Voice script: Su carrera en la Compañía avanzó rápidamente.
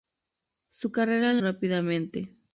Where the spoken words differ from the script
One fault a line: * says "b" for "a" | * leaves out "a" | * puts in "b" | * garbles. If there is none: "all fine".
* leaves out "la Compañía avanzó"